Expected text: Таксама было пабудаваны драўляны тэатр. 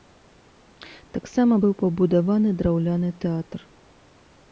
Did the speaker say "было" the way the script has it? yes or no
no